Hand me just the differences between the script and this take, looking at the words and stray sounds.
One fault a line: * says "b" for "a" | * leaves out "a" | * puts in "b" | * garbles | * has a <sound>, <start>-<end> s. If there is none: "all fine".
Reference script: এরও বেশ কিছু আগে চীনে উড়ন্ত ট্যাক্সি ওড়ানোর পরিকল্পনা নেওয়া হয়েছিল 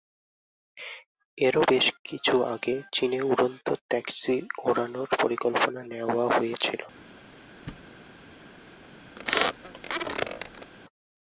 * has a thud, 7.7-7.9 s
* has a squeak, 9.2-10.7 s